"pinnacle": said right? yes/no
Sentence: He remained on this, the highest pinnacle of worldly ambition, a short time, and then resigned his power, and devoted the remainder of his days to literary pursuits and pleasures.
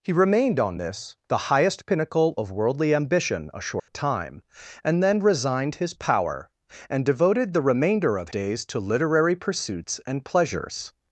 yes